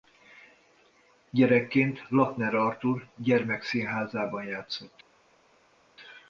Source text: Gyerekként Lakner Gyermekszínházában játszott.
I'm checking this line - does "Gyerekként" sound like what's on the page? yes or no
yes